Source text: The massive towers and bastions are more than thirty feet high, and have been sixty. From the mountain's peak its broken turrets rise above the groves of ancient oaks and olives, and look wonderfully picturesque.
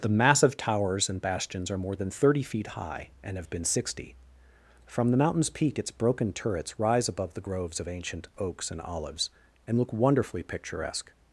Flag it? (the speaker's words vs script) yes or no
no